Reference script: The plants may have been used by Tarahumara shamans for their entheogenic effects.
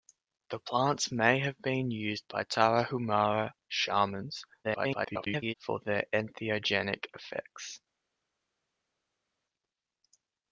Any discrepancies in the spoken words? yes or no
yes